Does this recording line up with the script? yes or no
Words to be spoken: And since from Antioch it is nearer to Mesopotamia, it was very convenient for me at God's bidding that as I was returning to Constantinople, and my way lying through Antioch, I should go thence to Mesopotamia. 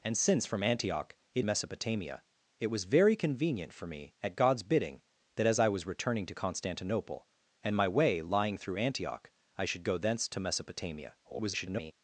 no